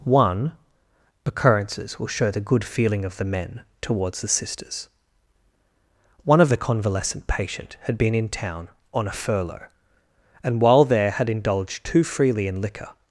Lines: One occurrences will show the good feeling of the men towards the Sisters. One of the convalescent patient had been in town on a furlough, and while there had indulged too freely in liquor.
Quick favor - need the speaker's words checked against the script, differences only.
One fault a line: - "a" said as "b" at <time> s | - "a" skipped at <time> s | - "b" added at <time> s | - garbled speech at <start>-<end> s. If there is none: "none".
none